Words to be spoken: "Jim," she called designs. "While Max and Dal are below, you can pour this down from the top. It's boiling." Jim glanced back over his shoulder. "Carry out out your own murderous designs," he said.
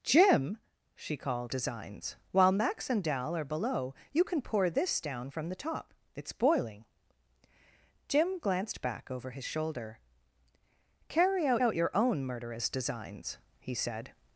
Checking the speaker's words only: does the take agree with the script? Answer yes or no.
yes